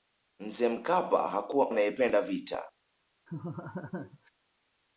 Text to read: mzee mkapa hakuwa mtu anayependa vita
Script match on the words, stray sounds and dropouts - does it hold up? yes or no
no